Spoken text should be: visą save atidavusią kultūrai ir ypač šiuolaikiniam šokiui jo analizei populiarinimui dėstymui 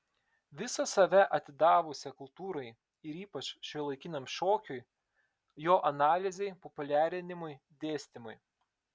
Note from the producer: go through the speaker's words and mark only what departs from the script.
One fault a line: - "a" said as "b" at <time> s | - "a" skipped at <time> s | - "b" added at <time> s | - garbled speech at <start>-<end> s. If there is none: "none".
none